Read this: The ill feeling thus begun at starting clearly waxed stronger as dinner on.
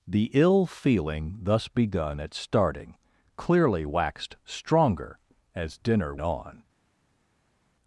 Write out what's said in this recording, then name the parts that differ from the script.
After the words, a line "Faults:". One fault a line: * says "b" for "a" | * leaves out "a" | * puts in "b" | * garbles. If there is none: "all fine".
The ill feeling thus begun at starting clearly waxed stronger as dinner on.
Faults:
all fine